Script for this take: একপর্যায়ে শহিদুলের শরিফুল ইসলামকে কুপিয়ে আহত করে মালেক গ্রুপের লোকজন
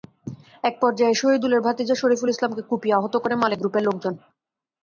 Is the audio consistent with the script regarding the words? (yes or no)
no